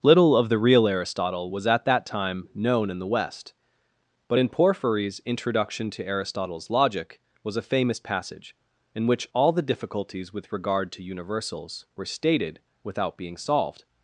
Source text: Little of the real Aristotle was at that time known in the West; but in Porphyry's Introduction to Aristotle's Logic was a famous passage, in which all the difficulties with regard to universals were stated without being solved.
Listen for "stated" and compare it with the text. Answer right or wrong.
right